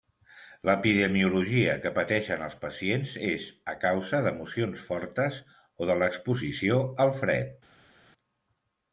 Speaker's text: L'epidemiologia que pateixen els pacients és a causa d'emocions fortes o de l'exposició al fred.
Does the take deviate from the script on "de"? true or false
false